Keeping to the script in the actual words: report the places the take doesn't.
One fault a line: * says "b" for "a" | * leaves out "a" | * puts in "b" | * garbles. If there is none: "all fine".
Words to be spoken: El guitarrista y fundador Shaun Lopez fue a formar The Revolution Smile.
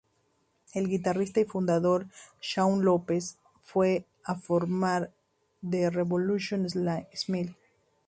all fine